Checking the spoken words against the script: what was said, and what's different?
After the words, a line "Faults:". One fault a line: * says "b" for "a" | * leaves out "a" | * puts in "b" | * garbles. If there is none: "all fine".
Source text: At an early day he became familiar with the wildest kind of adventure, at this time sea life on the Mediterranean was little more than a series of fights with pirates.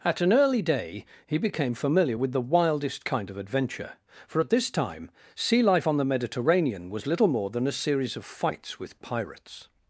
At an early day he became familiar with the wildest kind of adventure, for at this time sea life on the Mediterranean was little more than a series of fights with pirates.
Faults:
* puts in "for"